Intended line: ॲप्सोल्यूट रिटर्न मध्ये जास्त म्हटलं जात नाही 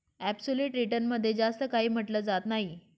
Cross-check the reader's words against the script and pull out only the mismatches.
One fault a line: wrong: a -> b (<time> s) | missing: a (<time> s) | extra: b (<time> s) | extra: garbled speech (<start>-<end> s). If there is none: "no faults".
extra: काही (1.7 s)